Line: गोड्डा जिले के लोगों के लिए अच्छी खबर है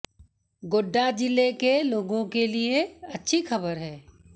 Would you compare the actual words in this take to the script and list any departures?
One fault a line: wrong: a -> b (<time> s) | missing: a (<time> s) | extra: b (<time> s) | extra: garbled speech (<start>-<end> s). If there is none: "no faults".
no faults